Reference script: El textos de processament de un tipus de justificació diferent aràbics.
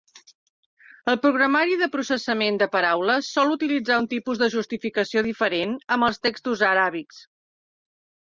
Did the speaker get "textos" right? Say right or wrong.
wrong